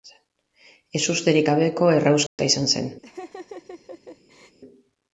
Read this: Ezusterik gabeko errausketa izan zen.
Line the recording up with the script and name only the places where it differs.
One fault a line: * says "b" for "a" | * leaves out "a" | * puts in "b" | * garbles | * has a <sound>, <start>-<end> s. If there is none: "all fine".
* has a dropout, 2.3-2.4 s
* has a laugh, 3.0-4.6 s